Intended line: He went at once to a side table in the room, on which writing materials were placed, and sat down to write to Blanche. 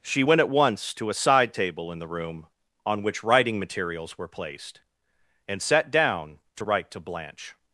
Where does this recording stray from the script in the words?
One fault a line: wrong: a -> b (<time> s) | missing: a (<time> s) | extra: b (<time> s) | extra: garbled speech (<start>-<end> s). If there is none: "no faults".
wrong: He -> She (0.0 s)